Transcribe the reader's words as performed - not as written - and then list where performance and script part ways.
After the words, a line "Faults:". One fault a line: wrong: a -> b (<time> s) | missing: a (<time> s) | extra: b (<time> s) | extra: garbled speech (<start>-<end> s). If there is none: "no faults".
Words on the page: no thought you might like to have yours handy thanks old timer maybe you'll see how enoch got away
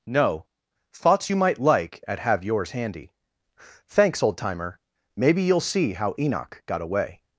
no thoughts you might like at have yours handy thanks old timer maybe you'll see how enoch got away
Faults:
wrong: thought -> thoughts (0.9 s)
wrong: to -> at (2.1 s)